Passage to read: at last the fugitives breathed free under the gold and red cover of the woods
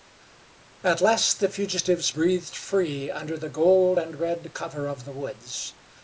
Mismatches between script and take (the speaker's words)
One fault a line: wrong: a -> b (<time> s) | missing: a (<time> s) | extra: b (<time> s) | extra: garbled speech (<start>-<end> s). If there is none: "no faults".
no faults